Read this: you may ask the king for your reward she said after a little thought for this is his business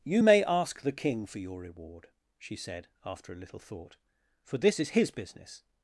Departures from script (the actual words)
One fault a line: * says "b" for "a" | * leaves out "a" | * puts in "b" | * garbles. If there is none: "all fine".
all fine